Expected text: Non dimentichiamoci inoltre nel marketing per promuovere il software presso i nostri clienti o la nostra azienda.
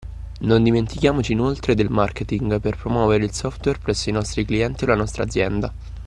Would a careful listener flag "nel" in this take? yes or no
yes